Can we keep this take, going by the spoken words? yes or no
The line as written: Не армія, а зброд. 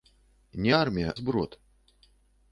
no